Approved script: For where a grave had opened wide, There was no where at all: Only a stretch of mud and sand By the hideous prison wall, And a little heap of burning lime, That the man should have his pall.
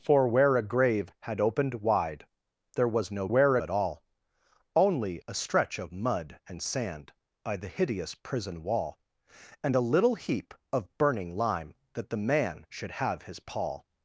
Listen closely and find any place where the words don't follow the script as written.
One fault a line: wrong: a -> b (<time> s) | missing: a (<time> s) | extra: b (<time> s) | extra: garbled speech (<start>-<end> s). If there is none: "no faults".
no faults